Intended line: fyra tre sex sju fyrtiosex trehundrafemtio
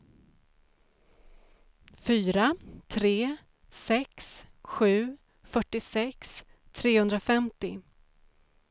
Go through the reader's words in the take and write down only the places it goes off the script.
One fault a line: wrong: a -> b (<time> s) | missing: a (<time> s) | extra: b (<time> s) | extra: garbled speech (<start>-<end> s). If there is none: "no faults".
no faults